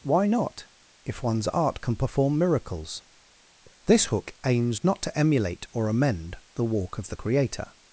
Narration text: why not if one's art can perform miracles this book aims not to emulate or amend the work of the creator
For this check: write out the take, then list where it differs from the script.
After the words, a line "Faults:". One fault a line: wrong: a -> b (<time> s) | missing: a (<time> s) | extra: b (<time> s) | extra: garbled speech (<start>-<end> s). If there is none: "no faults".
why not if one's art can perform miracles this hook aims not to emulate or amend the walk of the creator
Faults:
wrong: book -> hook (4.0 s)
wrong: work -> walk (6.7 s)